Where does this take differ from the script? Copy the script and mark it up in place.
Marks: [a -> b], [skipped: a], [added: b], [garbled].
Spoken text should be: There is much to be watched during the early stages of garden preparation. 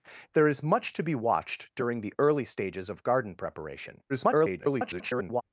There is much to be watched during the early stages of garden preparation. [garbled]